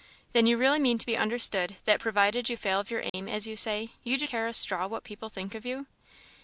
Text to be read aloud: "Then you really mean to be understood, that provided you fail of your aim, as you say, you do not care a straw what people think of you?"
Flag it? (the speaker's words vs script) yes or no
yes